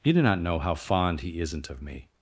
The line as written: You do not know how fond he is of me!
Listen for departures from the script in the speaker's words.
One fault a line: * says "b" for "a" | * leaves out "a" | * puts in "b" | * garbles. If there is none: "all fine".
* says "isn't" for "is"